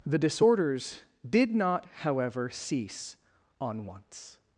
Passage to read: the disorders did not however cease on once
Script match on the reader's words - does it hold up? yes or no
yes